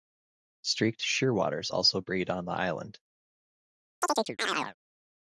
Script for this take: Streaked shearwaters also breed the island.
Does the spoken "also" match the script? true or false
true